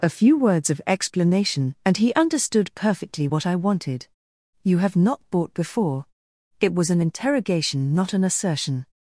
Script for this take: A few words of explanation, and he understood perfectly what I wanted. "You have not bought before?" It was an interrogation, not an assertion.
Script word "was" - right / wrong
right